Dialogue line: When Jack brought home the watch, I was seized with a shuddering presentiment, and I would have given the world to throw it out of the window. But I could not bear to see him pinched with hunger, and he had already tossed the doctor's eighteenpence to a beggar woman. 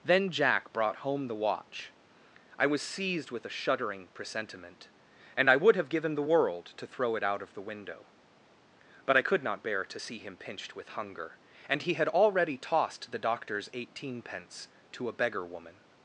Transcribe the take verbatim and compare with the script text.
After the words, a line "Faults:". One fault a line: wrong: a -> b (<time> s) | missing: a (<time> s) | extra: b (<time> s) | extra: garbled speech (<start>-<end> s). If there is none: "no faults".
Then Jack brought home the watch, I was seized with a shuddering presentiment, and I would have given the world to throw it out of the window. But I could not bear to see him pinched with hunger, and he had already tossed the doctor's eighteenpence to a beggar woman.
Faults:
wrong: When -> Then (0.0 s)